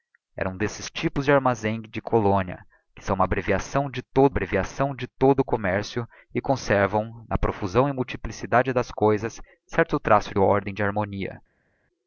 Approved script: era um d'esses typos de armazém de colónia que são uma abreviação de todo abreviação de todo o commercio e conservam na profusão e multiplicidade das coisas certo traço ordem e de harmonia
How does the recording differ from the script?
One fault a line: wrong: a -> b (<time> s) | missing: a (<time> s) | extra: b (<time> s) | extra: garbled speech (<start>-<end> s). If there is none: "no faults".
no faults